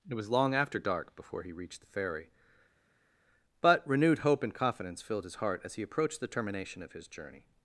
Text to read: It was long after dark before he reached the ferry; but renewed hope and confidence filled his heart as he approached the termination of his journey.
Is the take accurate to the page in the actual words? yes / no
yes